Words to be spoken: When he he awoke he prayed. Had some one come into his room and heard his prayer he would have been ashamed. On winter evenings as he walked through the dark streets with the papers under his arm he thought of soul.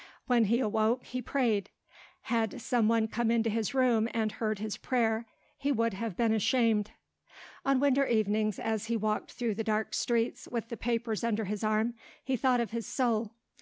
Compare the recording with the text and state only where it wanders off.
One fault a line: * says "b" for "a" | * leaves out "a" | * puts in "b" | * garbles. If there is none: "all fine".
* leaves out "he"
* puts in "his"